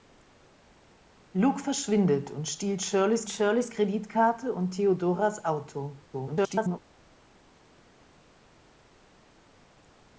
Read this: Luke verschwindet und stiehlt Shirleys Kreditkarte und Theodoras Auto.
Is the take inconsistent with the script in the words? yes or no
yes